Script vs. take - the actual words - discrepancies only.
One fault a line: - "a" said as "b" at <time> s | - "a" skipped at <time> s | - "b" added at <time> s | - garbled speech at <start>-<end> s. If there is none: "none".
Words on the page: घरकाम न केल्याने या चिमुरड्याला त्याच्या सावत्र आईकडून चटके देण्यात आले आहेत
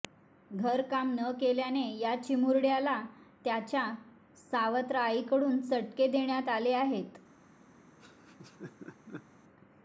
none